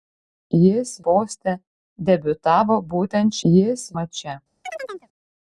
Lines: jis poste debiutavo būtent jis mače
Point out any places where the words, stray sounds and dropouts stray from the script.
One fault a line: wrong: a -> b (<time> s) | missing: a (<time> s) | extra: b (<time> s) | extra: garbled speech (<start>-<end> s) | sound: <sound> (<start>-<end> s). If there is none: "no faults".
sound: chirp (4.6-5.1 s)